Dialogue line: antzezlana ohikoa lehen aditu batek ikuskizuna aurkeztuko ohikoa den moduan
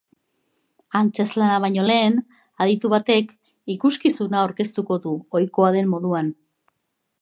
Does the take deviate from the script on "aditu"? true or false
false